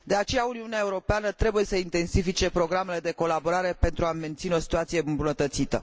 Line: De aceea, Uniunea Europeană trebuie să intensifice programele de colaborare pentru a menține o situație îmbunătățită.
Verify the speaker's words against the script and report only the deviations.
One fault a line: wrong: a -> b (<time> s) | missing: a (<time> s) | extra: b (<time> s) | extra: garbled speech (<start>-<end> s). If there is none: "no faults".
no faults